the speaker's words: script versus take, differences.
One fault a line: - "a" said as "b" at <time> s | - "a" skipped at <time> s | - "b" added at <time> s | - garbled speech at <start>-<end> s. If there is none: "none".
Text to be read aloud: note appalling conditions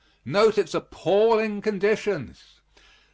- "its" added at 0.6 s